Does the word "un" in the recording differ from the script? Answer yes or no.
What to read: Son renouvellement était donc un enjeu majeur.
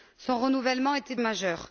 yes